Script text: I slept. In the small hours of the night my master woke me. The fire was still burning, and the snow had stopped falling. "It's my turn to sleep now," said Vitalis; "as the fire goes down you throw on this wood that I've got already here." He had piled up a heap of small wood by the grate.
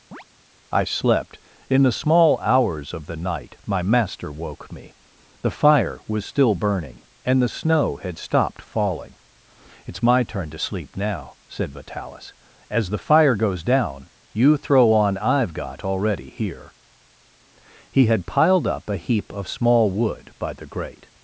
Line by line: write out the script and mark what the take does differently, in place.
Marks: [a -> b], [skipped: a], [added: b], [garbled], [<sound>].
[chirp] I slept. In the small hours of the night my master woke me. The fire was still burning, and the snow had stopped falling. "It's my turn to sleep now," said Vitalis; "as the fire goes down you throw on [skipped: this wood that] I've got already here." He had piled up a heap of small wood by the grate.